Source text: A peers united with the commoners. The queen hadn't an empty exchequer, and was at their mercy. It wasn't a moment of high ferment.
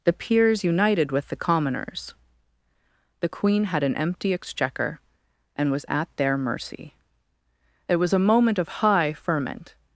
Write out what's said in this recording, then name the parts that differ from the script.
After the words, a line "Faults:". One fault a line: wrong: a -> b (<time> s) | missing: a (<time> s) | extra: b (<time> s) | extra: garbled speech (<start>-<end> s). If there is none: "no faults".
The peers united with the commoners. The queen had an empty exchequer, and was at their mercy. It was a moment of high ferment.
Faults:
wrong: A -> The (0.0 s)
wrong: hadn't -> had (3.6 s)
wrong: wasn't -> was (8.0 s)